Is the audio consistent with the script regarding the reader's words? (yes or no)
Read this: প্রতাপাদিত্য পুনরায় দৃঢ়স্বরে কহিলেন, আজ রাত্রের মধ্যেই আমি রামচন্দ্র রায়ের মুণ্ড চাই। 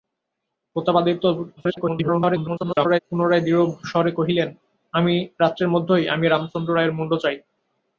no